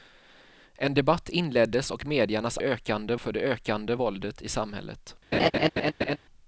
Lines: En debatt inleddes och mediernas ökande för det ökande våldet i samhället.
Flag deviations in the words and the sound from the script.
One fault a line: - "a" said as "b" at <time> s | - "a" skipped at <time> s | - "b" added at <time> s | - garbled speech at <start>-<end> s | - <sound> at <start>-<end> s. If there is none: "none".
- laugh at 5.3-6.2 s